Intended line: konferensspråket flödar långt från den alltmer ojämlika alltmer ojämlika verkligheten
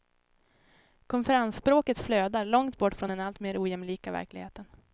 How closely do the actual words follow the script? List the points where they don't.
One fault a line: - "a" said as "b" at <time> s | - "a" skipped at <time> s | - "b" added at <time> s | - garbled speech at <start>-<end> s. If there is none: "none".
- "bort" added at 2.8 s
- "alltmer ojämlika" skipped at 4.1 s